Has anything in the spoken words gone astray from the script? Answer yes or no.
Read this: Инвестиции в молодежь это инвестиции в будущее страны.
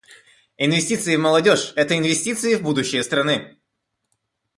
no